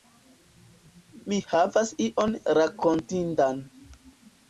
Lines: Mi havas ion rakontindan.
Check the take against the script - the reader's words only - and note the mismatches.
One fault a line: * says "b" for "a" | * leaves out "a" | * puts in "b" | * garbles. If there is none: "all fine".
all fine